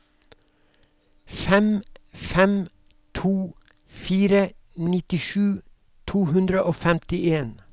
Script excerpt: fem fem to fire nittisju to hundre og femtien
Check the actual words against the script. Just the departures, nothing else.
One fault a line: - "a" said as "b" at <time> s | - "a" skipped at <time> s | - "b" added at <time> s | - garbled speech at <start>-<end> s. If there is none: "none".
none